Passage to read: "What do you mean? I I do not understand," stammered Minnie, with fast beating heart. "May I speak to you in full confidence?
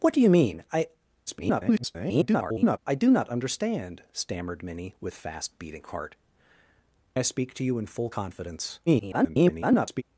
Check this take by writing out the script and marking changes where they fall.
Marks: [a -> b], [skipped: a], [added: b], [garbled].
"What do you mean? I [garbled] I do not understand," stammered Minnie, with fast beating heart. [skipped: "May] I speak to you in full confidence? [garbled]